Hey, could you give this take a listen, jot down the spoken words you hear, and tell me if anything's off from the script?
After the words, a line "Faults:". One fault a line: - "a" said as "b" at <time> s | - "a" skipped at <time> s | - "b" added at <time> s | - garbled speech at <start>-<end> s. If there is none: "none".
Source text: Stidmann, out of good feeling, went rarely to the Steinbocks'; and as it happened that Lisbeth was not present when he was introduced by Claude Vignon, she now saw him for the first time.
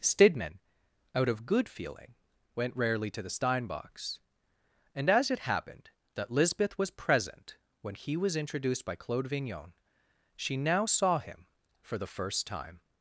Stidmann, out of good feeling, went rarely to the Steinbocks'; and as it happened that Lisbeth was present when he was introduced by Claude Vignon, she now saw him for the first time.
Faults:
- "not" skipped at 6.9 s